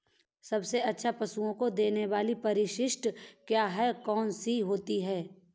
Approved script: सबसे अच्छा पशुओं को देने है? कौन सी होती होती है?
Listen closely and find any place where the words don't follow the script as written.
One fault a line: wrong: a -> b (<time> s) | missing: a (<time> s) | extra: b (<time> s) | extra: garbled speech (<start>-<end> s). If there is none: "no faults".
extra: वाली परिशिष्ट क्या (2.0 s)
missing: होती (5.0 s)